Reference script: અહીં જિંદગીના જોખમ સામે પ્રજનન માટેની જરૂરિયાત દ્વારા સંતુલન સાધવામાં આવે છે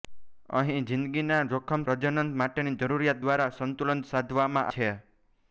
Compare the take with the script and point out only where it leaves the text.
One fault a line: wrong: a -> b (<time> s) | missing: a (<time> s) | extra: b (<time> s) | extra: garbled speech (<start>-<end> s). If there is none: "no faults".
missing: સામે (1.8 s)
missing: આવે (4.7 s)